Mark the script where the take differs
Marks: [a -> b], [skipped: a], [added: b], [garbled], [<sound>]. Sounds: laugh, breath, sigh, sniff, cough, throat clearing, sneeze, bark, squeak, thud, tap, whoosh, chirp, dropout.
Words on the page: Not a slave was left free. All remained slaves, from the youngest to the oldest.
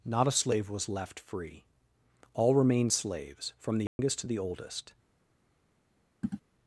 Not a slave was left free. All remained slaves, from the youngest [dropout] to the oldest. [throat clearing]